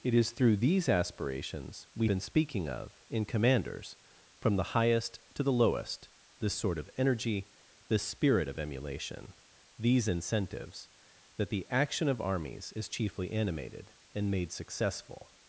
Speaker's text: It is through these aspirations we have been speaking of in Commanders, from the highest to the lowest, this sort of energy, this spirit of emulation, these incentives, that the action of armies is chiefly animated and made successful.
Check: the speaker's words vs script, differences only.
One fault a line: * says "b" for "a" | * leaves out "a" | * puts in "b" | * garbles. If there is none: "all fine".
* leaves out "have"